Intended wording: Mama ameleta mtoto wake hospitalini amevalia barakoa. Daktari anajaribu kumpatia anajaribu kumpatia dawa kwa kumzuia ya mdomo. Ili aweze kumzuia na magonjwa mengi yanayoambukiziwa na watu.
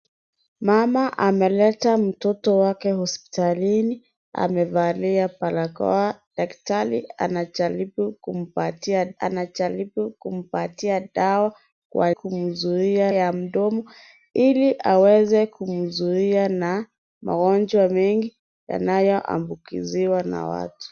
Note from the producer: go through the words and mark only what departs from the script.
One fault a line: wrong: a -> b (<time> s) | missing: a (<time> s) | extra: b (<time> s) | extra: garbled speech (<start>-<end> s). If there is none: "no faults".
no faults